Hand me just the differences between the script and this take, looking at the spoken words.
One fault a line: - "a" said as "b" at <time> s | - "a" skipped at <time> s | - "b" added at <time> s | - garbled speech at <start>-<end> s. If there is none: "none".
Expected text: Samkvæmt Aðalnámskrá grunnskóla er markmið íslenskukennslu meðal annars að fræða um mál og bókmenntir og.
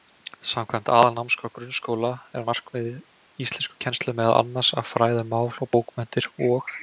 none